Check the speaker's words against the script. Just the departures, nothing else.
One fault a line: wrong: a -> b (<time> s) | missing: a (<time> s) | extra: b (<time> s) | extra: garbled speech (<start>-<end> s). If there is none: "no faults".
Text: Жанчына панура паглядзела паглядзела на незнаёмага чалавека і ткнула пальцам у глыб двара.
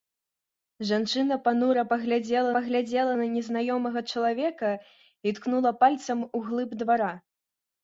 no faults